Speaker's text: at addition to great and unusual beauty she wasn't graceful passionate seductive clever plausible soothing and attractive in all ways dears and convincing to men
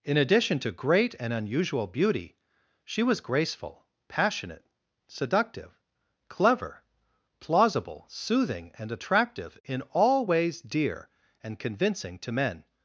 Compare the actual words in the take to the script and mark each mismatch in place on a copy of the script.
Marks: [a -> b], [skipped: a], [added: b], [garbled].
[at -> in] addition to great and unusual beauty she [wasn't -> was] graceful passionate seductive clever plausible soothing and attractive in all ways [dears -> dear] and convincing to men